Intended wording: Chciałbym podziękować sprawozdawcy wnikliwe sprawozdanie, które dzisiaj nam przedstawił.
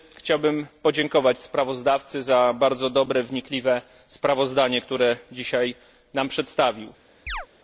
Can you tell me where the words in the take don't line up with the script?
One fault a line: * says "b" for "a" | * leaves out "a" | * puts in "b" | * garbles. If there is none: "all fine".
* puts in "za bardzo dobre"